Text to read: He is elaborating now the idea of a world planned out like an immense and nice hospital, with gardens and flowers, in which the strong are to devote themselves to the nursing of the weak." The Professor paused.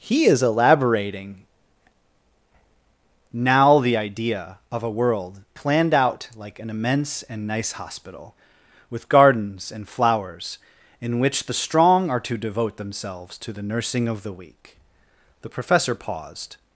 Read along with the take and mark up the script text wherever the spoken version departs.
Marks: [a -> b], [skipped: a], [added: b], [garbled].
He is elaborating now the idea of a world planned out like an immense and nice hospital, with gardens and flowers, in which the strong are to devote themselves to the nursing of the weak." The Professor paused.